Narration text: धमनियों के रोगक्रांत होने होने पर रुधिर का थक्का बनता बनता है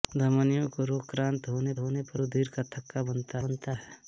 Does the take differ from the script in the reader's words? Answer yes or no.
no